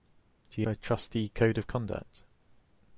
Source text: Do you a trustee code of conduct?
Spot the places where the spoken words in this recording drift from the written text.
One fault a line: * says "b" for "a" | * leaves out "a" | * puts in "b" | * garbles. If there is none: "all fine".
all fine